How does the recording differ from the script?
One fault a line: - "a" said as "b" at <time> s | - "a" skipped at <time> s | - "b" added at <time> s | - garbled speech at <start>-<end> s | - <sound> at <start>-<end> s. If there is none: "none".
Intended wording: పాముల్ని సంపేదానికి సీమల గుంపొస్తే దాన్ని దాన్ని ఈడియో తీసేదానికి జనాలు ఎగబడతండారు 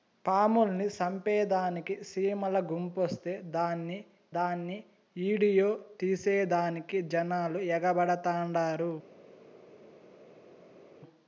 none